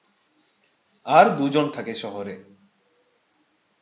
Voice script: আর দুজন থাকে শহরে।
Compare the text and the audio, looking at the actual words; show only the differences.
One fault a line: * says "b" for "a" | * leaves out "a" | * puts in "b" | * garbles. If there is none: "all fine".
all fine